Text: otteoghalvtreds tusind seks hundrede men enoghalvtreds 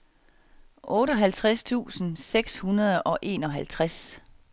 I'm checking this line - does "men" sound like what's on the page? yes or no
no